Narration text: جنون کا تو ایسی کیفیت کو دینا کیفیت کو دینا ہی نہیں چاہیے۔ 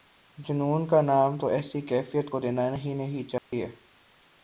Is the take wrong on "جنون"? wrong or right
right